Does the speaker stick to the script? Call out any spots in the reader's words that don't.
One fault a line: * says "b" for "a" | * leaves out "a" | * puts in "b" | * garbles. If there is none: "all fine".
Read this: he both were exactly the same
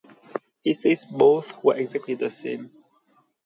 * puts in "says"